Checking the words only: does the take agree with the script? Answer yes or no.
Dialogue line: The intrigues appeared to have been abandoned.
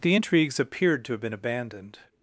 yes